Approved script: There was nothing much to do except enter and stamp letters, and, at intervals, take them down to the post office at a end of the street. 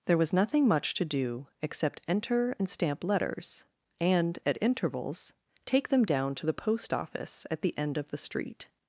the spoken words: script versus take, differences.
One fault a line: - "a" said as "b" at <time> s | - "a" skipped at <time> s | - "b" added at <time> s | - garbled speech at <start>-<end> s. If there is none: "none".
- "a" said as "the" at 7.6 s